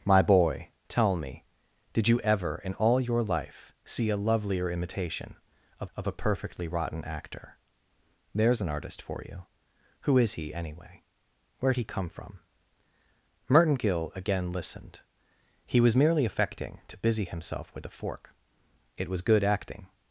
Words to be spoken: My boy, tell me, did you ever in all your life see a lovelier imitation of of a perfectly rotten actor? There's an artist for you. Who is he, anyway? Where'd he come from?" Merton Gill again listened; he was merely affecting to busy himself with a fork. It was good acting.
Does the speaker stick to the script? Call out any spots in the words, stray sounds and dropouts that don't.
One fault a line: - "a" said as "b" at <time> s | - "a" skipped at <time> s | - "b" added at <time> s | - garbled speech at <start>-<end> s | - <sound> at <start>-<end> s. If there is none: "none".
none